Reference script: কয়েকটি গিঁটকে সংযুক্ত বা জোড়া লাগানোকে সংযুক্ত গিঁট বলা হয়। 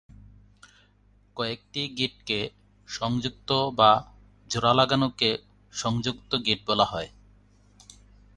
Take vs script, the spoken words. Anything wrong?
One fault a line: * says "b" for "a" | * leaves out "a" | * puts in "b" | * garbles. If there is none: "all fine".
all fine